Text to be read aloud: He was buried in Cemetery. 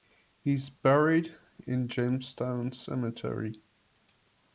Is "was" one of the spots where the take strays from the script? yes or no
yes